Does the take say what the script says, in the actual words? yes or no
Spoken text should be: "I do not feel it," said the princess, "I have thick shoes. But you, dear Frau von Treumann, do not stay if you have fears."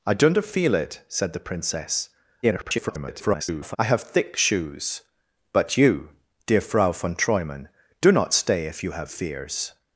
no